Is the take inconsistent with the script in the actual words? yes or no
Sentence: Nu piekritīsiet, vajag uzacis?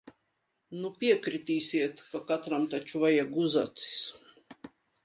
yes